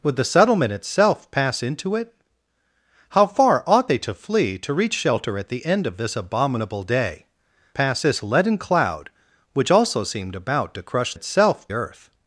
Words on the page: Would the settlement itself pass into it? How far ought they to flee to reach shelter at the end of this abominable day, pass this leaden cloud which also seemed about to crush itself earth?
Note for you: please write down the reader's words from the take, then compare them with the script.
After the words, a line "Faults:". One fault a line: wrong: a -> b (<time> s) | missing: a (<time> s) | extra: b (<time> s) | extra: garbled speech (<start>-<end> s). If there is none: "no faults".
Would the settlement itself pass into it? How far ought they to flee to reach shelter at the end of this abominable day, pass this leaden cloud which also seemed about to crush itself earth?
Faults:
no faults